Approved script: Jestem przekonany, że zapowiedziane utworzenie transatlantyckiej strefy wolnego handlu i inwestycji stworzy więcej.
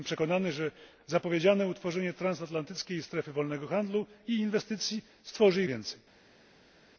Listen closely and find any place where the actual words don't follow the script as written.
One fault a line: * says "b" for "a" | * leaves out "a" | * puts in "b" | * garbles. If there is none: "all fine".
all fine